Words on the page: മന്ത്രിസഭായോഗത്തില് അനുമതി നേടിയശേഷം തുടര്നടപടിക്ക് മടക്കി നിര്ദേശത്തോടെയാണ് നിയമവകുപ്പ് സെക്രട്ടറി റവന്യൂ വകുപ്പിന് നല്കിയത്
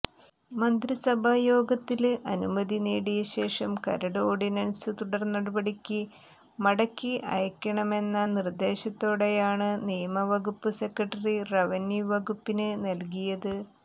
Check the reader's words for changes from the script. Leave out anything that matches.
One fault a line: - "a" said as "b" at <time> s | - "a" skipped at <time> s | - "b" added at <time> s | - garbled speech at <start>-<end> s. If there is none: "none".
- "കരട് ഓര്ഡിനന്സ്" added at 3.8 s
- "അയക്കണമെന്ന" added at 7.3 s